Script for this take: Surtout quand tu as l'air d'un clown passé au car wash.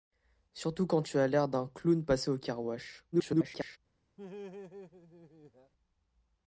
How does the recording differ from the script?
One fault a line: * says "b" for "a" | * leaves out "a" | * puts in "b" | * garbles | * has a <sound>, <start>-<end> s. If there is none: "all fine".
* garbles
* has a laugh, 4.2-5.7 s